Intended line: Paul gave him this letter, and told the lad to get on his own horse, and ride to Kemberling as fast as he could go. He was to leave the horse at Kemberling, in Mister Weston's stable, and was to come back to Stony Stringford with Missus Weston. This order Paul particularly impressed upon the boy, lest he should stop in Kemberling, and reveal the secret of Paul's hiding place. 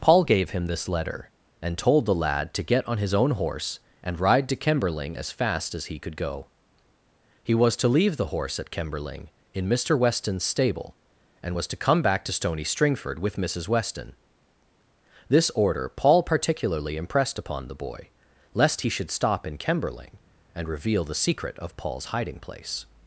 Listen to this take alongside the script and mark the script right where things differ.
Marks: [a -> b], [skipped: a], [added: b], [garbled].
Paul gave him this letter, and told the lad to get on his own horse, and ride to Kemberling as fast as he could go. He was to leave the horse at Kemberling, in Mister Weston's stable, and was to come back to Stony Stringford with Missus Weston. This order Paul particularly impressed upon the boy, lest he should stop in Kemberling, and reveal the secret of Paul's hiding place.